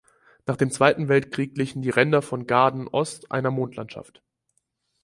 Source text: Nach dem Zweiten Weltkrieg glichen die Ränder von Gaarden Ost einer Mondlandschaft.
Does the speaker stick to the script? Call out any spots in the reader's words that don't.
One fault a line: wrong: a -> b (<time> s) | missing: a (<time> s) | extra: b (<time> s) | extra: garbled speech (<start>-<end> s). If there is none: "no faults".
no faults